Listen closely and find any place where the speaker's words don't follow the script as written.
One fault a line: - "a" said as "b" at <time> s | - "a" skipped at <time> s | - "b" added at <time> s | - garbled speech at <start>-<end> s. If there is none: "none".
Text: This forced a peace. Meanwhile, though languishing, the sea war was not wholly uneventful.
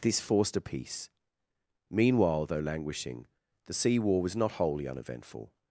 none